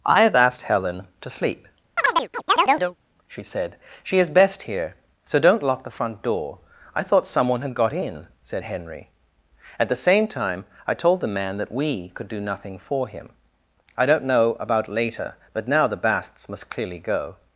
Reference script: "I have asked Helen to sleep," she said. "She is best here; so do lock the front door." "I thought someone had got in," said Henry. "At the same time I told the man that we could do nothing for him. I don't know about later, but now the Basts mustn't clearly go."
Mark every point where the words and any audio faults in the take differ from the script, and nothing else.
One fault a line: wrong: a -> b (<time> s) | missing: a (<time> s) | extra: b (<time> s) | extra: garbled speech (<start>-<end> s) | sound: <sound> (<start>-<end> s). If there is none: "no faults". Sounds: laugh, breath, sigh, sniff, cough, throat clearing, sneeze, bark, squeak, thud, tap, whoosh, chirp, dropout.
sound: chirp (2.0-3.0 s)
wrong: do -> don't (5.4 s)
wrong: mustn't -> must (16.5 s)